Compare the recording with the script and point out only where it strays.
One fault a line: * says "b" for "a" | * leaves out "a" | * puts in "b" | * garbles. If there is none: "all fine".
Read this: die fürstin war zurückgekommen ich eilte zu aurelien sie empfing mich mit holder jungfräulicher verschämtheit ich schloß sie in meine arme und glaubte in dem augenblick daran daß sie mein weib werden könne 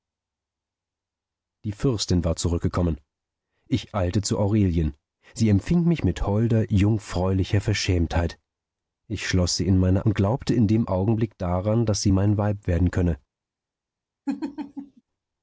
* leaves out "arme"